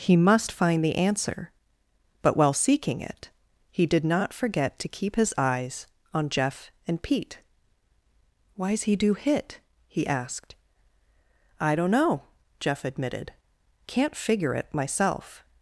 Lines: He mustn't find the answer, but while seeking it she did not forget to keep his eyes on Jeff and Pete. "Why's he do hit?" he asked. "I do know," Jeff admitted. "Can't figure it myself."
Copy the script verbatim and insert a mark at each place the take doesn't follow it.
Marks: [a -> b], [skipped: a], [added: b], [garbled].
He [mustn't -> must] find the answer, but while seeking it [she -> he] did not forget to keep his eyes on Jeff and Pete. "Why's he do hit?" he asked. "I [do -> don't] know," Jeff admitted. "Can't figure it myself."